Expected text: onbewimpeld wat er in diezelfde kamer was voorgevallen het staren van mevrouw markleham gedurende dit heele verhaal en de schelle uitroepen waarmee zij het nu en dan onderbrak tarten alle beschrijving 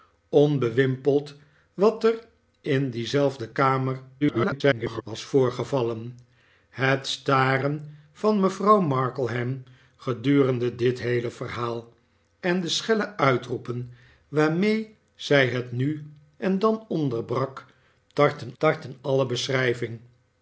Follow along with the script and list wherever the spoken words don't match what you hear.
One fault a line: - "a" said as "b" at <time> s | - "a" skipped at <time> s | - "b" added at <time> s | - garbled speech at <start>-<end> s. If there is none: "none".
- garbled speech at 4.2-5.0 s
- "tarten" added at 18.6 s